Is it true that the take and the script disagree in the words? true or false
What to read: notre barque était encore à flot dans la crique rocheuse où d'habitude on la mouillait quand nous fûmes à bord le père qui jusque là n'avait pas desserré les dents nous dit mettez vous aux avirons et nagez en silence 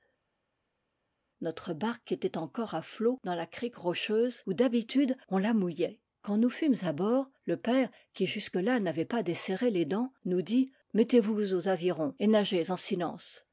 false